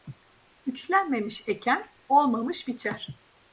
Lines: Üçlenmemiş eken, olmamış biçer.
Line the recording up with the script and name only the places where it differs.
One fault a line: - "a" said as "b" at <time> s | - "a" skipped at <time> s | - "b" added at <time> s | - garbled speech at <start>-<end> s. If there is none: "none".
none